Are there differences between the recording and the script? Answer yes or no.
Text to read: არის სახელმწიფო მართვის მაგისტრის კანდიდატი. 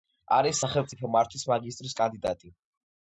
no